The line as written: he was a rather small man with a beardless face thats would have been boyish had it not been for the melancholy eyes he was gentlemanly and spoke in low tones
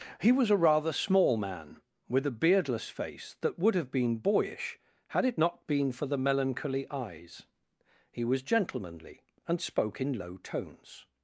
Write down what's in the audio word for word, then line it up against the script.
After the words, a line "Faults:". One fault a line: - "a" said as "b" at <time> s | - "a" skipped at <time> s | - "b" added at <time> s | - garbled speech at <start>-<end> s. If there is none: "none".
he was a rather small man with a beardless face that would have been boyish had it not been for the melancholy eyes he was gentlemanly and spoke in low tones
Faults:
- "thats" said as "that" at 3.4 s